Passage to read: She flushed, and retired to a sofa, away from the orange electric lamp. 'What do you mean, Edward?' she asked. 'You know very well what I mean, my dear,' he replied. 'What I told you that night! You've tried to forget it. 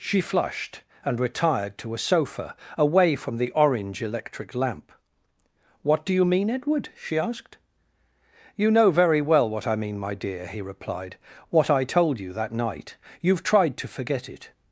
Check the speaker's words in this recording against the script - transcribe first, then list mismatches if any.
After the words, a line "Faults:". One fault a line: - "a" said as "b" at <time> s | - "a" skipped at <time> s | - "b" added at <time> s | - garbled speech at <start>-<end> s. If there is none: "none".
She flushed, and retired to a sofa, away from the orange electric lamp. 'What do you mean, Edward?' she asked. 'You know very well what I mean, my dear,' he replied. 'What I told you that night! You've tried to forget it.
Faults:
none